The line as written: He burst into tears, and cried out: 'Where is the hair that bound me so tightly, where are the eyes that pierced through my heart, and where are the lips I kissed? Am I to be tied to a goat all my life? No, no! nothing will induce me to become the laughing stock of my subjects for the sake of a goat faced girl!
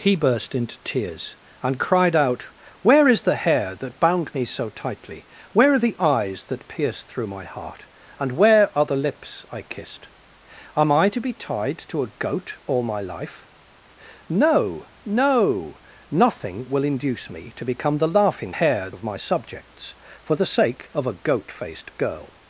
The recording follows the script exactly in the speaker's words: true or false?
false